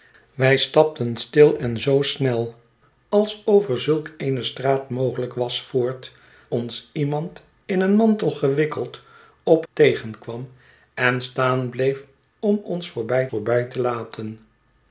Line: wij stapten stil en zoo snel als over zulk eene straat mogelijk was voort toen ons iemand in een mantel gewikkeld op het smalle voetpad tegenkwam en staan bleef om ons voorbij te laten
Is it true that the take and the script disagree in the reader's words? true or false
true